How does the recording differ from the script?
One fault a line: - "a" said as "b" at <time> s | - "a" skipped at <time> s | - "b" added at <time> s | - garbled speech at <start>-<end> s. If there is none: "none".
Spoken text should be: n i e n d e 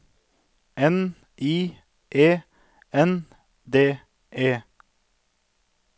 none